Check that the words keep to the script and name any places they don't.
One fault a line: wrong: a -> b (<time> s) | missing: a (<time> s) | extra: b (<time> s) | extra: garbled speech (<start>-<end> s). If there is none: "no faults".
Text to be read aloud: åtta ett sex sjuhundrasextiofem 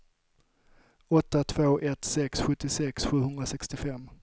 extra: två (1.4 s)
extra: sjuttiosex (2.4 s)